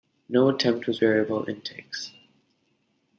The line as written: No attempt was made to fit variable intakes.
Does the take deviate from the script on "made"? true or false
true